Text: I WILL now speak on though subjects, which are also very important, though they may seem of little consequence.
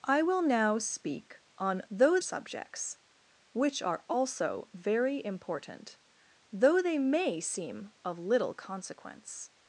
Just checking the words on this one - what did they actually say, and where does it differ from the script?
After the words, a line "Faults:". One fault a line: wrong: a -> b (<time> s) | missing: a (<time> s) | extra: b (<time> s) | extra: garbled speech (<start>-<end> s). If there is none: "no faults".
I WILL now speak on though subjects, which are also very important, though they may seem of little consequence.
Faults:
no faults